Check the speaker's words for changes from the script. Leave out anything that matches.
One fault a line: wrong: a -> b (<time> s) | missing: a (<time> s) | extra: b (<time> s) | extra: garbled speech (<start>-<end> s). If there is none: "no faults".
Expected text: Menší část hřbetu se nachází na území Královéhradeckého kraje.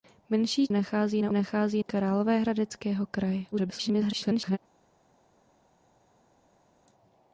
missing: část hřbetu se (0.7 s)
wrong: území -> nachází (1.3 s)
extra: garbled speech (3.5-4.6 s)